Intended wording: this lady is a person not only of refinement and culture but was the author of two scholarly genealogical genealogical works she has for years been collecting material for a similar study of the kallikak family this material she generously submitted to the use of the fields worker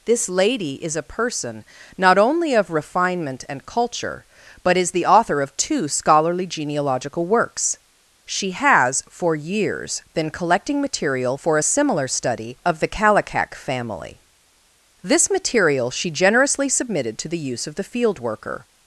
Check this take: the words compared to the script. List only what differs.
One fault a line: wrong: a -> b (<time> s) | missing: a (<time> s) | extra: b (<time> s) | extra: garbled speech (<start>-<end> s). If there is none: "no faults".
wrong: was -> is (4.8 s)
missing: genealogical (7.3 s)
wrong: fields -> field (17.8 s)